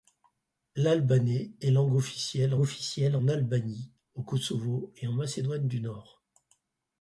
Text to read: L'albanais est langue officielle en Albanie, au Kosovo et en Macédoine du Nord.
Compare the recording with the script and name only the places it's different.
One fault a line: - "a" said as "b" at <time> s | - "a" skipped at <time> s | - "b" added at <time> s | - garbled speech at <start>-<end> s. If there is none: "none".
- "officielle" added at 2.6 s